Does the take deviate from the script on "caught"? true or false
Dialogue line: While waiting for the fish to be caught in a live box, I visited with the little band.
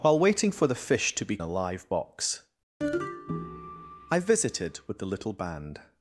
true